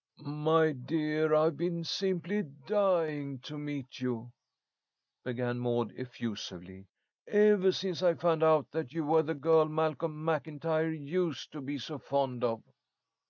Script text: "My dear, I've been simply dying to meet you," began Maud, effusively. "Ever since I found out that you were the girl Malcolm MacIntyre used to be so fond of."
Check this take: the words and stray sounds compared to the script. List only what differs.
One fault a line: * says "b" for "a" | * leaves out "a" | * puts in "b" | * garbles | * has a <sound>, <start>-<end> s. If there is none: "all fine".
all fine